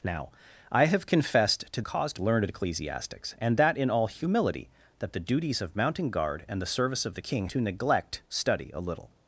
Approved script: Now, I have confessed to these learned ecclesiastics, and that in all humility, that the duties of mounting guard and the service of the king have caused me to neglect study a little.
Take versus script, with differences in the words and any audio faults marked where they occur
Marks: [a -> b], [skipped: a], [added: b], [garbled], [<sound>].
Now, I have confessed to [these -> caused] learned ecclesiastics, and that in all humility, that the duties of mounting guard and the service of the king [skipped: have caused me] to neglect study a little.